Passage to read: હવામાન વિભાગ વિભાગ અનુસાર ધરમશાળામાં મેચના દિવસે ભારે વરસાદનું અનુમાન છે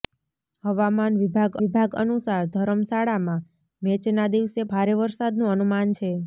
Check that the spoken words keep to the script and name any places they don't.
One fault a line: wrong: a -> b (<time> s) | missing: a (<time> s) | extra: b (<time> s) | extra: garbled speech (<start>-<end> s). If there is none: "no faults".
no faults